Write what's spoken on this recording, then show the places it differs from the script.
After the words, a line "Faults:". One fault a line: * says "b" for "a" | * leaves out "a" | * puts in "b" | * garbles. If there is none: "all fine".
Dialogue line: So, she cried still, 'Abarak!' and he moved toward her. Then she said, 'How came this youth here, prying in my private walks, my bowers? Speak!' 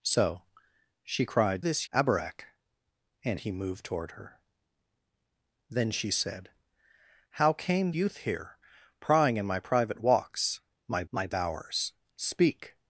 So, she cried this, 'Abarak!' and he moved toward her. Then she said, 'How came youth here, prying in my private walks, my my bowers? Speak!'
Faults:
* says "this" for "still"
* leaves out "this"
* puts in "my"